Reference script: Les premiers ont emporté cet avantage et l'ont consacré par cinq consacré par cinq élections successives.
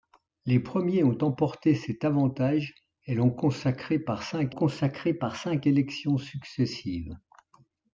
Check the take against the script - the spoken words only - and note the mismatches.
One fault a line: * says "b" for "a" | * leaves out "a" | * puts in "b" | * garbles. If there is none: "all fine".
all fine